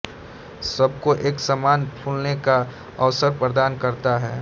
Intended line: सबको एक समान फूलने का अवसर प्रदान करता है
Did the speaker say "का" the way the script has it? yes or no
yes